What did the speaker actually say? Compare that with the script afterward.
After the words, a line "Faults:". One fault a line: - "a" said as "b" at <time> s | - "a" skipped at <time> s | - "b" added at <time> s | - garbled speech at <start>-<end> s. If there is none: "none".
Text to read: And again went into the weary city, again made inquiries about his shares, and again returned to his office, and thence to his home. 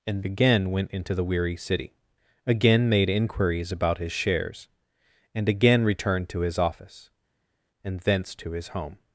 And again went into the weary city, again made inquiries about his shares, and again returned to his office, and thence to his home.
Faults:
none